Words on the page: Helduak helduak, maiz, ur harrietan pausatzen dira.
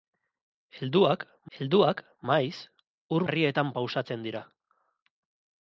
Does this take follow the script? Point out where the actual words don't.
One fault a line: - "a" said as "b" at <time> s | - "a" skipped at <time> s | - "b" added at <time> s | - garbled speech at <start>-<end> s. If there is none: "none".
none